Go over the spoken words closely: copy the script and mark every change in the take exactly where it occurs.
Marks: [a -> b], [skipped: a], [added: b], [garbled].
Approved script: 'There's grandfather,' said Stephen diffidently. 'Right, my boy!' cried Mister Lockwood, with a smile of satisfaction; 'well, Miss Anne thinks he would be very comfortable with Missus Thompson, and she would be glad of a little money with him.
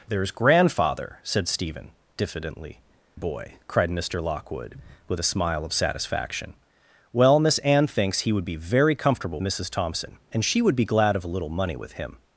'There's grandfather,' said Stephen diffidently. [skipped: 'Right, my] boy!' cried Mister Lockwood, with a smile of satisfaction; 'well, Miss Anne thinks he would be very comfortable [skipped: with] Missus Thompson, and she would be glad of a little money with him.